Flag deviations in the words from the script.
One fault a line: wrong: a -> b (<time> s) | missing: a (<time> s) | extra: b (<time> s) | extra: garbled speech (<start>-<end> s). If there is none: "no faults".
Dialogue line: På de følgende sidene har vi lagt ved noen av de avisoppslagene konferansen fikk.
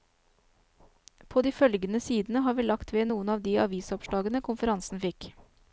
no faults